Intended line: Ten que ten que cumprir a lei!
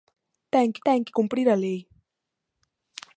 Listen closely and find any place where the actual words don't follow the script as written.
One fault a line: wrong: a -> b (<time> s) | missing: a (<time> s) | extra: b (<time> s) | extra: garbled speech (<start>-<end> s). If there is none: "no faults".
no faults